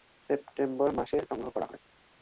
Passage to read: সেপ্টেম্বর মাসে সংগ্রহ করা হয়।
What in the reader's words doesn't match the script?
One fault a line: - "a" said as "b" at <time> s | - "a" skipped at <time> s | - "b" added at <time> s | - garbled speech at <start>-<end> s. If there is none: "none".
none